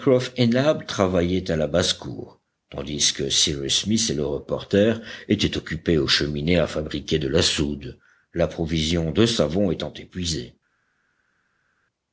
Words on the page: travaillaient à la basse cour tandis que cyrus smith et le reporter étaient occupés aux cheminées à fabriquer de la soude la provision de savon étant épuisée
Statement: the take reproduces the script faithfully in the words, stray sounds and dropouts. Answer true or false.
true